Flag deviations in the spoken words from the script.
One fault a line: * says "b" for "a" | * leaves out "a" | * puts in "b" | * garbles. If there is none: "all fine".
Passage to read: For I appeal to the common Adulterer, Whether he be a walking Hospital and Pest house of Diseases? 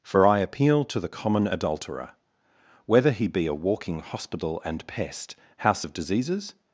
all fine